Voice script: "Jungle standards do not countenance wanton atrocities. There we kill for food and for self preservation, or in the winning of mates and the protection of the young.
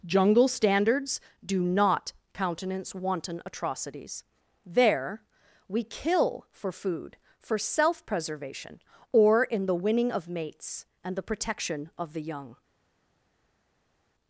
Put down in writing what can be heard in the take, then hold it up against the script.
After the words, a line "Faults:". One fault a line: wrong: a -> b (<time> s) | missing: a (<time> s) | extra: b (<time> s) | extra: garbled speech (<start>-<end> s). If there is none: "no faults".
"Jungle standards do not countenance wanton atrocities. There we kill for food for self preservation, or in the winning of mates and the protection of the young.
Faults:
missing: and (7.2 s)